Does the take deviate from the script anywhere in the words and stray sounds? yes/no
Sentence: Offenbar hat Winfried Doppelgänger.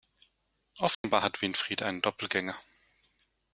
yes